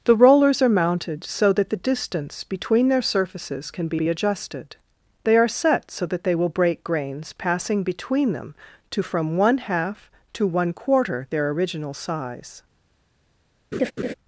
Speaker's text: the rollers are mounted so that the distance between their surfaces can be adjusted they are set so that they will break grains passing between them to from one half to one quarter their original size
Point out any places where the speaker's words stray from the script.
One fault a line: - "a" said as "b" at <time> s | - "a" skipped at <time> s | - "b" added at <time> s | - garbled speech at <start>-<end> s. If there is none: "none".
- "be" added at 3.9 s